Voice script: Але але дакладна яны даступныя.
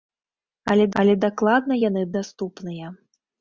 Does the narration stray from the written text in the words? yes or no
no